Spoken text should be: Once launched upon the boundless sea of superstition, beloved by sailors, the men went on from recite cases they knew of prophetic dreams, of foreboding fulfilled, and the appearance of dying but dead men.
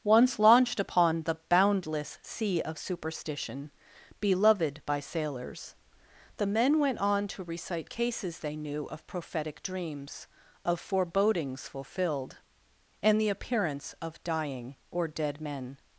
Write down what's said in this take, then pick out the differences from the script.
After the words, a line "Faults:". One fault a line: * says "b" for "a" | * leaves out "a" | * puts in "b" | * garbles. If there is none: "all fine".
Once launched upon the boundless sea of superstition, beloved by sailors, the men went on to recite cases they knew of prophetic dreams, of forebodings fulfilled, and the appearance of dying or dead men.
Faults:
* says "to" for "from"
* says "forebodings" for "foreboding"
* says "or" for "but"